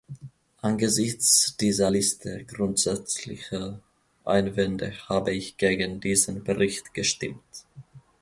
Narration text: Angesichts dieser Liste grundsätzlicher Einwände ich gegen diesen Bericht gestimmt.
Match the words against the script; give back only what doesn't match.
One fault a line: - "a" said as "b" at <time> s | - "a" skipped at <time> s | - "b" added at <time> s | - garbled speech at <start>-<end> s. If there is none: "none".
- "habe" added at 5.1 s